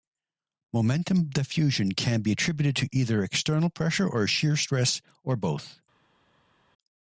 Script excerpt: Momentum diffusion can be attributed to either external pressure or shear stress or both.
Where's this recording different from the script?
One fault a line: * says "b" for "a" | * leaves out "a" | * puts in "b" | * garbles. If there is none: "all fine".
all fine